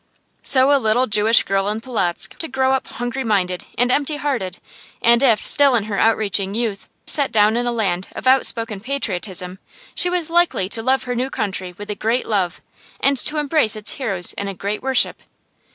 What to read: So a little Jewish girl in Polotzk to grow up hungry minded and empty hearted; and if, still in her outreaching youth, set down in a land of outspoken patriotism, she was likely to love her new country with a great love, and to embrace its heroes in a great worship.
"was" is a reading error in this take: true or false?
false